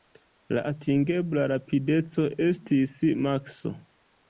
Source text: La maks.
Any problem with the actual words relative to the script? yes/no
yes